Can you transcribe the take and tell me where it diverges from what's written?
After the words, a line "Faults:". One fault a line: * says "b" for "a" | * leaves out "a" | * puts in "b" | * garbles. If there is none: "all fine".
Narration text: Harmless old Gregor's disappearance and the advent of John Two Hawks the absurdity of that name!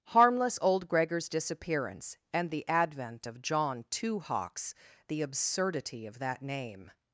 Harmless old Gregor's disappearance and the advent of John Two Hawks the absurdity of that name!
Faults:
all fine